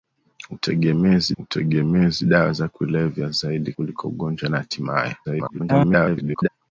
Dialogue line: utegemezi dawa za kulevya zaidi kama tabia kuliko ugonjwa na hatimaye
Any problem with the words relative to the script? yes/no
yes